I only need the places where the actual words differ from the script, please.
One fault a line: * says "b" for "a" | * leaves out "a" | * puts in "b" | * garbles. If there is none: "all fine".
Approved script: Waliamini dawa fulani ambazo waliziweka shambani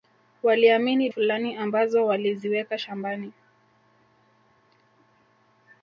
* leaves out "dawa"